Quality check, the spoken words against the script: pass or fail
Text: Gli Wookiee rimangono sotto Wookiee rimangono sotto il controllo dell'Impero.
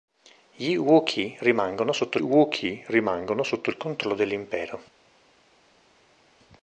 pass